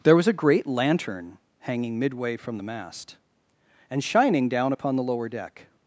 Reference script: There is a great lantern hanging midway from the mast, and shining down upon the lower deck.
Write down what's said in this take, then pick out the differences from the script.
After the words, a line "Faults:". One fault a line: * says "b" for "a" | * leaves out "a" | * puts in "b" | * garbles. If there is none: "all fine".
There was a great lantern hanging midway from the mast, and shining down upon the lower deck.
Faults:
* says "was" for "is"